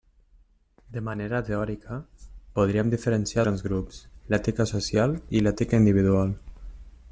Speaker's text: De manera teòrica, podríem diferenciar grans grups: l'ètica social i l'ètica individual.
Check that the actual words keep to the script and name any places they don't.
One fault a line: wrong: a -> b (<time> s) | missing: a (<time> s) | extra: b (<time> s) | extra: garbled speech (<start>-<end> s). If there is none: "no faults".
no faults